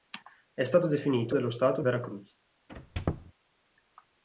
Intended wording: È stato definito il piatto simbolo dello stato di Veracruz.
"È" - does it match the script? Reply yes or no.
yes